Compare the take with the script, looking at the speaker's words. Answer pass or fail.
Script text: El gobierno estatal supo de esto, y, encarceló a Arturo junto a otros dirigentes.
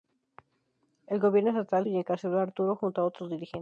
fail